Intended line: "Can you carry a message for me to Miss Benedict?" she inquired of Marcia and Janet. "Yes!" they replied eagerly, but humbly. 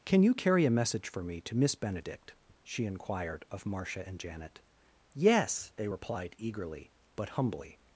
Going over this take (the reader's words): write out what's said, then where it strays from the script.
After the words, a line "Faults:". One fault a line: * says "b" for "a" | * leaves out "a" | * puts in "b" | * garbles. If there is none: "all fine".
"Can you carry a message for me to Miss Benedict?" she inquired of Marcia and Janet. "Yes!" they replied eagerly, but humbly.
Faults:
all fine